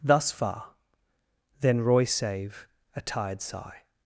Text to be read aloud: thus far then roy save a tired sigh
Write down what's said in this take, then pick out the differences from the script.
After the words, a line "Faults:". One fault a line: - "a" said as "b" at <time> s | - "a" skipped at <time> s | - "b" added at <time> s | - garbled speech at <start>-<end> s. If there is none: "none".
thus far then roy save a tired sigh
Faults:
none